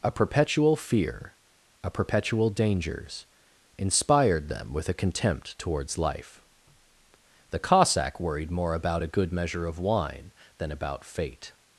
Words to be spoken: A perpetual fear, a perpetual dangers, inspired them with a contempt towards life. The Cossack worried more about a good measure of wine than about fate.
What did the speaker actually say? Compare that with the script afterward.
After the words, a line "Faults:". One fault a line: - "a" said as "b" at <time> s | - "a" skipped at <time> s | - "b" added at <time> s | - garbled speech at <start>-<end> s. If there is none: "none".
A perpetual fear, a perpetual dangers, inspired them with a contempt towards life. The Cossack worried more about a good measure of wine than about fate.
Faults:
none